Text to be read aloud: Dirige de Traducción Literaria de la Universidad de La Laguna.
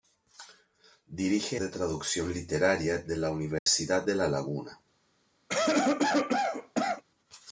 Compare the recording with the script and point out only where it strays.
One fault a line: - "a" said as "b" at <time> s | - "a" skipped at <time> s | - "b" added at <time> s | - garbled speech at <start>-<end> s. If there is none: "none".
none